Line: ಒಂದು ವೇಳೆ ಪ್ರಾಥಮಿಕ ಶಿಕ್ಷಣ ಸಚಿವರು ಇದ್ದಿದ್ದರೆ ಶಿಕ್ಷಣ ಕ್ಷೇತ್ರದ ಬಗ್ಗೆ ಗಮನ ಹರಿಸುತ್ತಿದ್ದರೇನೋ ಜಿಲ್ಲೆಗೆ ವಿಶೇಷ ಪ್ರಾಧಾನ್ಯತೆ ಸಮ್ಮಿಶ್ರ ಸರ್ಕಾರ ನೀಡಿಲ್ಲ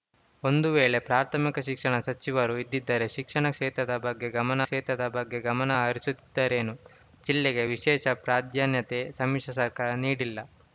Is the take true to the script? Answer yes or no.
no